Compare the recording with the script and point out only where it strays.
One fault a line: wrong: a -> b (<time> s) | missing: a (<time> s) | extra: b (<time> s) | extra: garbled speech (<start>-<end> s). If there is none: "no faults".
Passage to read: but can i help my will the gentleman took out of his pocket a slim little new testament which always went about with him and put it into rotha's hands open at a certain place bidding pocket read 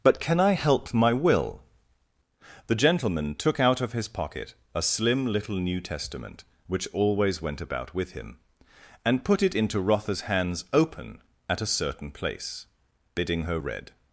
wrong: pocket -> her (13.4 s)